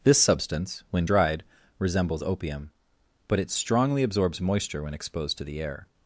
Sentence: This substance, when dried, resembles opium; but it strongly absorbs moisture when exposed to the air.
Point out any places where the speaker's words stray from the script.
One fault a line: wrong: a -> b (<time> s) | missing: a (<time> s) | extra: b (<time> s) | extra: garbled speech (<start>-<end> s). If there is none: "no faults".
no faults